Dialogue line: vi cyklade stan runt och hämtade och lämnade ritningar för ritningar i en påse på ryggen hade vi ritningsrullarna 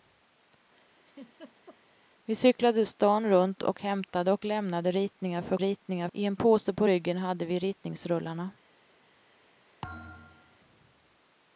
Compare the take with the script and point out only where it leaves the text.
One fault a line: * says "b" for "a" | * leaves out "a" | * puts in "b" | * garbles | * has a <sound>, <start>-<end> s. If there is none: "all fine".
* has a laugh, 1.0-1.8 s
* has a thud, 9.8-10.6 s